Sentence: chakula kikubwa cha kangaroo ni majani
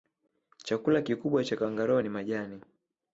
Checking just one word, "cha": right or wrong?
right